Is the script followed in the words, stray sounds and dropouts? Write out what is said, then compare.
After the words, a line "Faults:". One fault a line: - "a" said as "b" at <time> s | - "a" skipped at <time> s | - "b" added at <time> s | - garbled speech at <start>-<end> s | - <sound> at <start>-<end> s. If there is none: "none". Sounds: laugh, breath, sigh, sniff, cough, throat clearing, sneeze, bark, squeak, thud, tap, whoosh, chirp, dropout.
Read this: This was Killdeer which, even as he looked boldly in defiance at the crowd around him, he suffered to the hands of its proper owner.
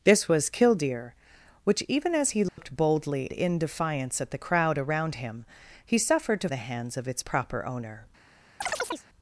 This was Killdeer which, even as he looked boldly in defiance at the crowd around him, he suffered to the hands of its proper owner.
Faults:
- dropout at 2.5-2.6 s
- chirp at 8.6-9.1 s